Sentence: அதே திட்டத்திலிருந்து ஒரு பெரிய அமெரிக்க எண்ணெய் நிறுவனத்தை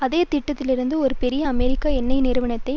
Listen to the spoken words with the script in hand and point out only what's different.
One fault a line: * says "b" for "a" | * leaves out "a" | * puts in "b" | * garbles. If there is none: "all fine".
all fine